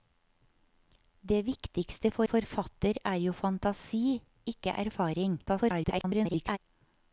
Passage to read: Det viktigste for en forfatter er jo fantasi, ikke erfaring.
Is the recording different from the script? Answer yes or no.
yes